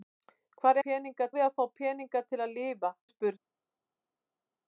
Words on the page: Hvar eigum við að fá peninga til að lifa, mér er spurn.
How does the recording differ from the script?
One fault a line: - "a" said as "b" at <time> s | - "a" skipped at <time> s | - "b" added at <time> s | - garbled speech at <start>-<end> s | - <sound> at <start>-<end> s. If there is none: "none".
- "eigum" said as "peninga" at 0.9 s
- "mér" skipped at 2.9 s